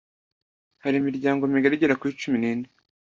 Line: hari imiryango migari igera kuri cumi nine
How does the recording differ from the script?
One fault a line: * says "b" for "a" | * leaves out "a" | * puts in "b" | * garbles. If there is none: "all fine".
all fine